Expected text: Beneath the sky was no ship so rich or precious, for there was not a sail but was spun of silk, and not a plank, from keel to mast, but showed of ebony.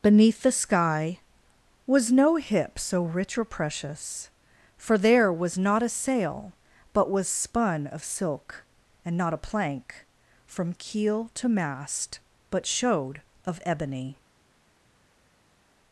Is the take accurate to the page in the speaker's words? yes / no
no